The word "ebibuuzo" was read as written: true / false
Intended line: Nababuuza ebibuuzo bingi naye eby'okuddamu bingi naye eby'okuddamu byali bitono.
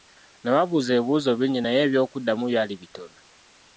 true